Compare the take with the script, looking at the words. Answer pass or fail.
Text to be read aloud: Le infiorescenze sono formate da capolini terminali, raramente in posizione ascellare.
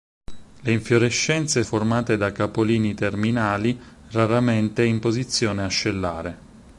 fail